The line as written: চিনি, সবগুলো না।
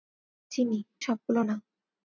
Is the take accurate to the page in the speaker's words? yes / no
yes